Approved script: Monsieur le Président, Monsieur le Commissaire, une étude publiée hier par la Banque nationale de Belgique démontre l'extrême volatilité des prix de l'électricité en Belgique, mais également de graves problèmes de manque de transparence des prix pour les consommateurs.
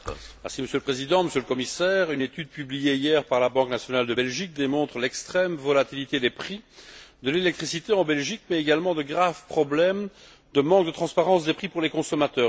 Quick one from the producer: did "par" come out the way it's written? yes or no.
yes